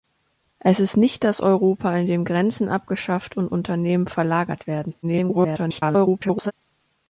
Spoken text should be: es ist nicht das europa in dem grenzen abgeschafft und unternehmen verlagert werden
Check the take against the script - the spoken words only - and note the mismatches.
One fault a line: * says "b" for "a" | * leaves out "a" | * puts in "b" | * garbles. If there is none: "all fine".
* garbles